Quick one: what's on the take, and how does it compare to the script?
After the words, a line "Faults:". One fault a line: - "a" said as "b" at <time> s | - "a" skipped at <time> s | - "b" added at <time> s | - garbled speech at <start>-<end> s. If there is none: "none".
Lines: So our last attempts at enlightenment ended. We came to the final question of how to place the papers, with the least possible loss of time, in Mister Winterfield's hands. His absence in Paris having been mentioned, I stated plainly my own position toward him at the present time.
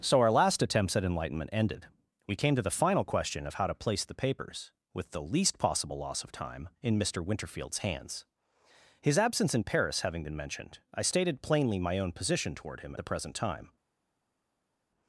So our last attempts at enlightenment ended. We came to the final question of how to place the papers, with the least possible loss of time, in Mister Winterfield's hands. His absence in Paris having been mentioned, I stated plainly my own position toward him the present time.
Faults:
- "at" skipped at 12.9 s